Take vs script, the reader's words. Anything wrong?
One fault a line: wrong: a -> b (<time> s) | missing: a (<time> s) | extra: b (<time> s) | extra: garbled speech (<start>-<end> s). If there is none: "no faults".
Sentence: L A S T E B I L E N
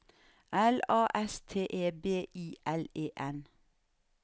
no faults